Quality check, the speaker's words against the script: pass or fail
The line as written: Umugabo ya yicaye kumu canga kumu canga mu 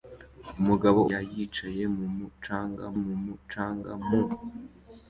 pass